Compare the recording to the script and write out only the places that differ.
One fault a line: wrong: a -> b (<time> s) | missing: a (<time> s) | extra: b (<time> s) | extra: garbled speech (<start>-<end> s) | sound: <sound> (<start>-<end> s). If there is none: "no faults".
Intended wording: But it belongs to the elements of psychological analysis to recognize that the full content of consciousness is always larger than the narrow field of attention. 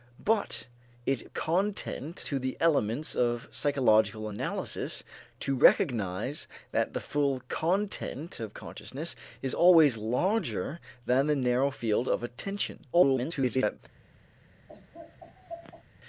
wrong: belongs -> content (1.3 s)
extra: garbled speech (12.9-13.8 s)
sound: laugh (14.7-15.8 s)